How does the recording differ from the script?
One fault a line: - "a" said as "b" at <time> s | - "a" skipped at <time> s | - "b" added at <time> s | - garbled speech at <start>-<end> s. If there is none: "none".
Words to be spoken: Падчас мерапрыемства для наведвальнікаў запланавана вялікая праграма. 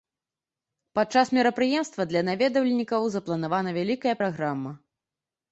none